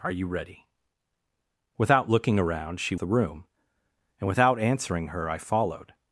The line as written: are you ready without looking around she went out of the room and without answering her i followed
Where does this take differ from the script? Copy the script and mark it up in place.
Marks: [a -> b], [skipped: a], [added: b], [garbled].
are you ready without looking around she [skipped: went out of] the room and without answering her i followed